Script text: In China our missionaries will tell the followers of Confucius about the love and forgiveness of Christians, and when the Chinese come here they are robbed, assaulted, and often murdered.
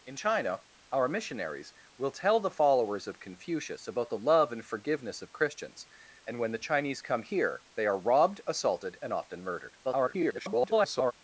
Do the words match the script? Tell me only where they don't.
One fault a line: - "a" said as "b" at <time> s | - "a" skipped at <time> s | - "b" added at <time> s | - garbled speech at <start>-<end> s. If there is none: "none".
- garbled speech at 9.8-11.1 s